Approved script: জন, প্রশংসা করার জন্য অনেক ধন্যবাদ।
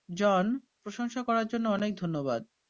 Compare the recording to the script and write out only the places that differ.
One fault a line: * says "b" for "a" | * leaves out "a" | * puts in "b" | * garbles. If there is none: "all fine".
all fine